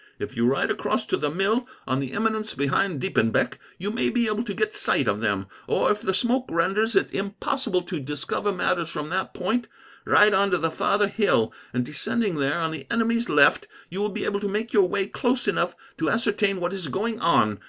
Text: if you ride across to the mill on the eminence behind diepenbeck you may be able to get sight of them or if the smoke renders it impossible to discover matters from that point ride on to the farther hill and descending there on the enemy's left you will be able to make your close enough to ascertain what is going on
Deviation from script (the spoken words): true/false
true